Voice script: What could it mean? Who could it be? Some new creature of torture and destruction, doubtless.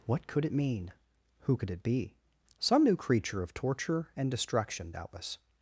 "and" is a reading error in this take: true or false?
false